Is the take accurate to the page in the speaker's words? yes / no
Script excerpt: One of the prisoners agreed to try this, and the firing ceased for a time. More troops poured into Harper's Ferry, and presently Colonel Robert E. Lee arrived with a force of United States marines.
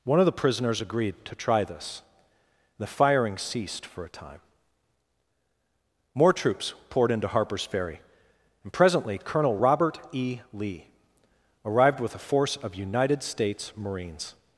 no